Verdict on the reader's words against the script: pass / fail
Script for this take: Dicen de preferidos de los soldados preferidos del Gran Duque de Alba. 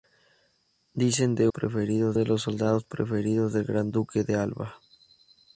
pass